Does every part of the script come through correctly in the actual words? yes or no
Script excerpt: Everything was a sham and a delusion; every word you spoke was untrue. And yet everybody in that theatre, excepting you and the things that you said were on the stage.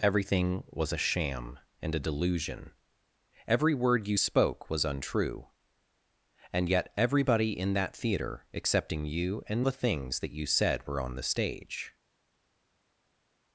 yes